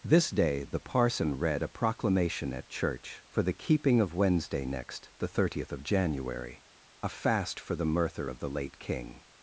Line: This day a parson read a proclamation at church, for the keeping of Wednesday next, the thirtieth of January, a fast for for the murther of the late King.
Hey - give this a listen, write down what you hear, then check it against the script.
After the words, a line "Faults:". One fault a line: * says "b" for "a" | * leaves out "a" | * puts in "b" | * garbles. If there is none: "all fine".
This day the parson read a proclamation at church, for the keeping of Wednesday next, the thirtieth of January, a fast for the murther of the late King.
Faults:
* says "the" for "a"
* leaves out "for"